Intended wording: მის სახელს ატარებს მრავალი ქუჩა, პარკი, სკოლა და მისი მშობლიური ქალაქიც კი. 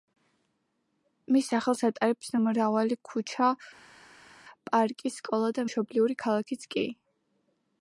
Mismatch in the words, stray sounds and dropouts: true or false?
true